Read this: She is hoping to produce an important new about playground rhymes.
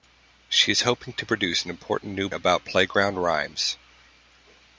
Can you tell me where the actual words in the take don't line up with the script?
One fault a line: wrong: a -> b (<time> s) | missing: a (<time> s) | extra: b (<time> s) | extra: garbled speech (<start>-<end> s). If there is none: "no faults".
no faults